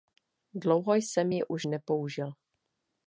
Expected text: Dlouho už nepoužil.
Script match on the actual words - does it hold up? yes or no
no